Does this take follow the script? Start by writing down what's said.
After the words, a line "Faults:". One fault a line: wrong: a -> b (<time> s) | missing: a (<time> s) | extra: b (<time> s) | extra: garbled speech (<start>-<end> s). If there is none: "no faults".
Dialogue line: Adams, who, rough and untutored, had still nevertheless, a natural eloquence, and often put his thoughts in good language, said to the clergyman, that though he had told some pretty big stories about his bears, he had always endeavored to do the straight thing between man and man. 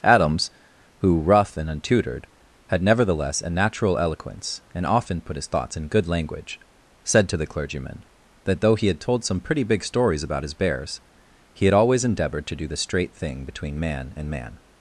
Adams, who, rough and untutored, had nevertheless, a natural eloquence, and often put his thoughts in good language, said to the clergyman, that though he had told some pretty big stories about his bears, he had always endeavored to do the straight thing between man and man.
Faults:
missing: still (2.8 s)